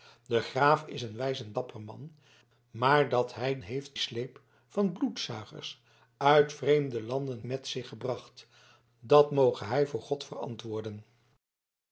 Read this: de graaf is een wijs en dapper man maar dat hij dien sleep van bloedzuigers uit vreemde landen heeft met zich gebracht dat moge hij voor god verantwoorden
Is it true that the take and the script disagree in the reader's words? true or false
true